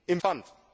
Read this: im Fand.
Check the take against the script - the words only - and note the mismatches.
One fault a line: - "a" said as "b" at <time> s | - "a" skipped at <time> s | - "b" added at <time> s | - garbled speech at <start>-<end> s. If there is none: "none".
none